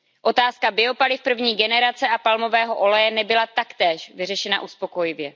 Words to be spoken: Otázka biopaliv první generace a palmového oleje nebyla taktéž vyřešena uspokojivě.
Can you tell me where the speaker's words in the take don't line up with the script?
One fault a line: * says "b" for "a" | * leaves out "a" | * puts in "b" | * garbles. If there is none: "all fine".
all fine